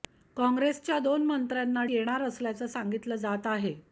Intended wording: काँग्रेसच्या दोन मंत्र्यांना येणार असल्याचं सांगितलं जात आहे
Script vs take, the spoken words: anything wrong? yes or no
no